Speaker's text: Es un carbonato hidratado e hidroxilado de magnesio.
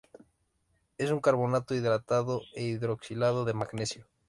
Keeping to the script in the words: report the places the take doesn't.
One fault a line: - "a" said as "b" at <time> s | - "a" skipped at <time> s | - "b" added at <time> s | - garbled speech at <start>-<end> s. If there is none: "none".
none